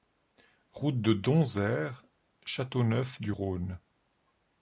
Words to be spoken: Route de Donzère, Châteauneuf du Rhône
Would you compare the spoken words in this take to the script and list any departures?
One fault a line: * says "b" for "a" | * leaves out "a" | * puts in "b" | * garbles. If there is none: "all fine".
all fine